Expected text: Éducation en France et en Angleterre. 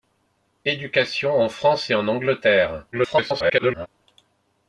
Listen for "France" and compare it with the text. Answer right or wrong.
right